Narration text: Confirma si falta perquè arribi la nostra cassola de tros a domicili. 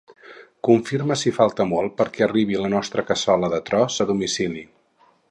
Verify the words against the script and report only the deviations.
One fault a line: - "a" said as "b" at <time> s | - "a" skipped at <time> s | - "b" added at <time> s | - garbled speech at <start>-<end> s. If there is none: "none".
- "molt" added at 1.7 s